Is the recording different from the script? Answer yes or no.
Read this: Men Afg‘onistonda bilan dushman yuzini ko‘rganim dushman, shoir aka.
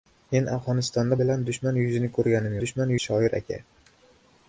no